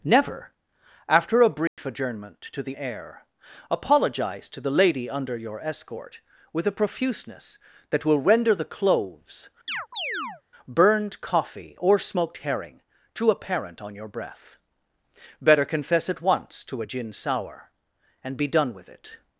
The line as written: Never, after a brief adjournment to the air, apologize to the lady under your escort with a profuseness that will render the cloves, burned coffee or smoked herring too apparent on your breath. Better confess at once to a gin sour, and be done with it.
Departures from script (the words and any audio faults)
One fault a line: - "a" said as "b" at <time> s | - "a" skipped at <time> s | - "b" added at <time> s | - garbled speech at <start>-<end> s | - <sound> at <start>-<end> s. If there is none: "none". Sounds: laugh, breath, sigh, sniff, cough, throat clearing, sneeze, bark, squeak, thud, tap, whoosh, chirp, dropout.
- dropout at 1.7-1.8 s
- chirp at 9.7-10.4 s